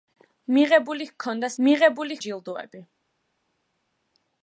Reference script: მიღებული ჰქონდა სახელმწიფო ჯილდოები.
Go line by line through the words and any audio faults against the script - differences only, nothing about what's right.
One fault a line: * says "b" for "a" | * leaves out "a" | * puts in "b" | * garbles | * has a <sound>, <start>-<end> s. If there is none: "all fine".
* says "მიღებული" for "სახელმწიფო"